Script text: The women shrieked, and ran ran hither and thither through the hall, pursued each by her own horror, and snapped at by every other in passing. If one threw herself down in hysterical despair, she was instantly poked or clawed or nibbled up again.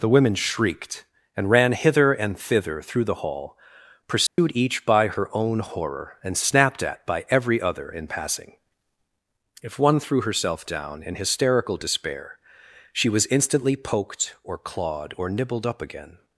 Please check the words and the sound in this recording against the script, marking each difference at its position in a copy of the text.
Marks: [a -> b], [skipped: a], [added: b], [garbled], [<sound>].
The women shrieked, and ran [skipped: ran] hither and thither through the hall, pursued [dropout] each by her own horror, and snapped at by every other in passing. If one threw herself down in hysterical despair, she was instantly poked or clawed or nibbled up again.